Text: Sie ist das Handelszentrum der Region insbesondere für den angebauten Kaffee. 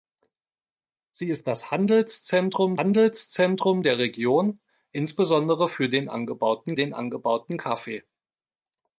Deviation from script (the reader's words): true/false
true